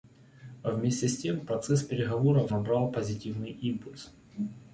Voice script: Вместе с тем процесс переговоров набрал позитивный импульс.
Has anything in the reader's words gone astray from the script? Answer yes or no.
no